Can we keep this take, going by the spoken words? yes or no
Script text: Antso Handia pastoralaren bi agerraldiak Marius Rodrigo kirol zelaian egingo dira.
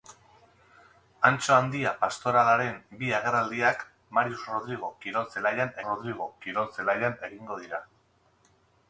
no